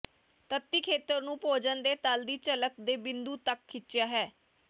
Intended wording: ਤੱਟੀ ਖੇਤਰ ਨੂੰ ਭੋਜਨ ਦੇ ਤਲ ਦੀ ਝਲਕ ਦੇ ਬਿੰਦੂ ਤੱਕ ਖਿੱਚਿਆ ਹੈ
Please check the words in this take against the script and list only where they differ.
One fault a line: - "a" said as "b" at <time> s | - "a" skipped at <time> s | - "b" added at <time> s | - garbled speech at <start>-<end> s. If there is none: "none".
none